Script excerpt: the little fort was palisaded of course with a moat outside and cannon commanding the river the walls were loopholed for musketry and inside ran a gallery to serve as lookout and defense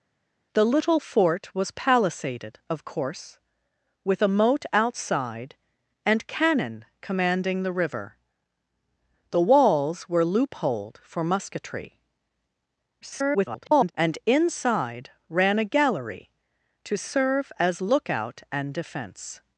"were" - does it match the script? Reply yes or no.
yes